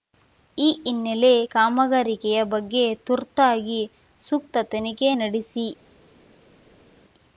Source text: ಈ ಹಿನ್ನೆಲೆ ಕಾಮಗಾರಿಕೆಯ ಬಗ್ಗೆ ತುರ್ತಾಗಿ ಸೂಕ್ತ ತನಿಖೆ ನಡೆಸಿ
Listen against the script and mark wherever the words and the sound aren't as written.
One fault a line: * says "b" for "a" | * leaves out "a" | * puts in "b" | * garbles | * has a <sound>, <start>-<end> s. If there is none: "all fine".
all fine